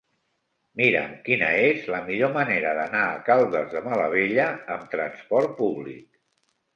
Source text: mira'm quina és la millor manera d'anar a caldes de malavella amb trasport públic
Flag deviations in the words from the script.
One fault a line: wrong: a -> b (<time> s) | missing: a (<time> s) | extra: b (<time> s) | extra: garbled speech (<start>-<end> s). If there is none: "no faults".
no faults